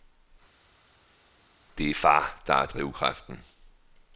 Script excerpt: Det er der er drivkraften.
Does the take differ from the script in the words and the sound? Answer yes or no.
yes